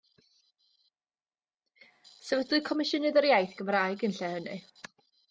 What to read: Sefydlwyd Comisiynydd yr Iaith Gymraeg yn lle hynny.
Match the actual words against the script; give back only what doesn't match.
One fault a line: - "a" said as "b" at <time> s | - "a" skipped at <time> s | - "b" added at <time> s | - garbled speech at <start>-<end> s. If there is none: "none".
none